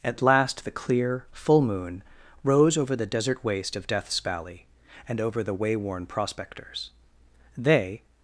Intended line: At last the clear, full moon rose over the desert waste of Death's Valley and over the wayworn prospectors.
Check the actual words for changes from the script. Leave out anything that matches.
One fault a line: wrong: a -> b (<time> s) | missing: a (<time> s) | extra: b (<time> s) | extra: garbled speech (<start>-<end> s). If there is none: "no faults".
extra: They (7.6 s)